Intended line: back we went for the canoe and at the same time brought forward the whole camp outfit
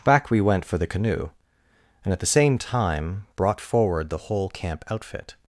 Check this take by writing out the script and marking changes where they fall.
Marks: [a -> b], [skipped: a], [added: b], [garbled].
back we went for the canoe and at the same time brought forward the whole camp outfit